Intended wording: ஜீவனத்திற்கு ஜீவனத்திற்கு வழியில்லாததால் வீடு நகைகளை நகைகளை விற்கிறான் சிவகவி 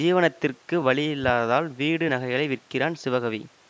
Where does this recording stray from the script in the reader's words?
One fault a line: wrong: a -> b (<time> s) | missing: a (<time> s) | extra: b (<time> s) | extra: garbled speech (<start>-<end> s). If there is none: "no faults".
missing: ஜீவனத்திற்கு (0.7 s)
missing: நகைகளை (2.5 s)